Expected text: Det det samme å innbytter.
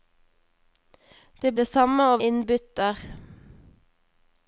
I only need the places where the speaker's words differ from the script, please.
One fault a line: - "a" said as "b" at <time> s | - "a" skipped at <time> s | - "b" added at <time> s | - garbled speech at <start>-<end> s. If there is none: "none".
none